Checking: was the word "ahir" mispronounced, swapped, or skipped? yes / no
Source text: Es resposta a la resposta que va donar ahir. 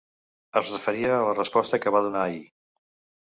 no